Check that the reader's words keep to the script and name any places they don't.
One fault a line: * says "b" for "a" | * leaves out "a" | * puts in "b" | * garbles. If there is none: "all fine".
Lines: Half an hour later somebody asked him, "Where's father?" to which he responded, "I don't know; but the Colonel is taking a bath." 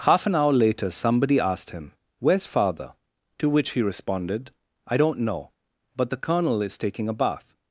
all fine